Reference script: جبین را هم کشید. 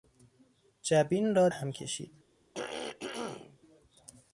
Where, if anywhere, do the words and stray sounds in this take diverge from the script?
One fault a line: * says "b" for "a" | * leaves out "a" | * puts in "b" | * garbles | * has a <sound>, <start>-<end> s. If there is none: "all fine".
* has a throat clearing, 2.5-3.6 s